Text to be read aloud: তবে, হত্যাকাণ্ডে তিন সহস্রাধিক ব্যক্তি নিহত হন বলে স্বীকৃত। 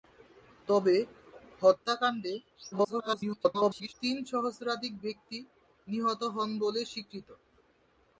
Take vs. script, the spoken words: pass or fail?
fail